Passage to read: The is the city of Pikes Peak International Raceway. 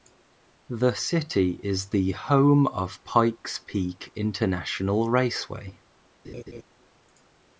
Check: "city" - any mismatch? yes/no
yes